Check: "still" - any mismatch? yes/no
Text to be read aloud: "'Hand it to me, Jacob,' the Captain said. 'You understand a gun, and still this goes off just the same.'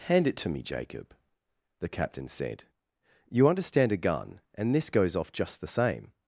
yes